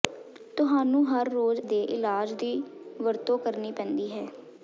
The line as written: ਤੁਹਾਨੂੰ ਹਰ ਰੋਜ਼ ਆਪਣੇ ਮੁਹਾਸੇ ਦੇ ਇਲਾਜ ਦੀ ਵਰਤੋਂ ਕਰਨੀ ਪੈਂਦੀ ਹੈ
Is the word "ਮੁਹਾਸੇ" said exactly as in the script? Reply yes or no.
no